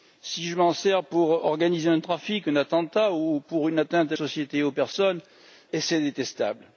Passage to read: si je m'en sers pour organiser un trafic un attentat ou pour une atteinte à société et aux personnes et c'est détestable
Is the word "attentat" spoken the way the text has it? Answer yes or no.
yes